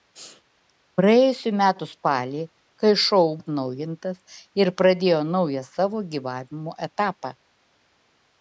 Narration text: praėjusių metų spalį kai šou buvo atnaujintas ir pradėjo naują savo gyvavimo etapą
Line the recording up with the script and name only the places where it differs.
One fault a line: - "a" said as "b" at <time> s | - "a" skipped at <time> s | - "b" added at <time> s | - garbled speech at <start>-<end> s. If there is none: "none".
- "buvo" skipped at 3.2 s